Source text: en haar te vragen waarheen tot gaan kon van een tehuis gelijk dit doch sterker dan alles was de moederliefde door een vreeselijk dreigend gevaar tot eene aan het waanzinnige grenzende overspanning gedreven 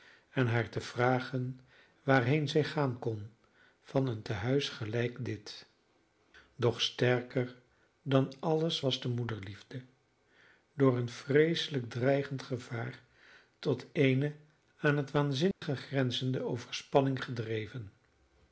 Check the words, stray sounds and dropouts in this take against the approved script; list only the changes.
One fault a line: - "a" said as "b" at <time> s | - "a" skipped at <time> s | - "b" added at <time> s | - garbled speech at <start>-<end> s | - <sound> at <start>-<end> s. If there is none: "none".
- "tot" said as "zij" at 2.5 s
- dropout at 15.5-15.6 s